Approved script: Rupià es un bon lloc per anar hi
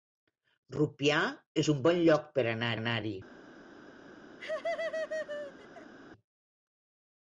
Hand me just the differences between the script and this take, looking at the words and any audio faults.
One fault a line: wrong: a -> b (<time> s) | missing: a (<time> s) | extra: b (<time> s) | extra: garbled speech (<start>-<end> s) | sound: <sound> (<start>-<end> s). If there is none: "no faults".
extra: anar (2.8 s)
sound: laugh (4.4-5.9 s)